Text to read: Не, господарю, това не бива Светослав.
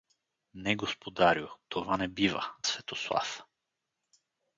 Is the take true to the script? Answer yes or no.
yes